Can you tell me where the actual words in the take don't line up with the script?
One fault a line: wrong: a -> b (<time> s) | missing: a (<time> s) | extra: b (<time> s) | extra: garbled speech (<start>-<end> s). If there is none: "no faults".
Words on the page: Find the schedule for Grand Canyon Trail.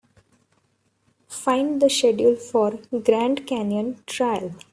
no faults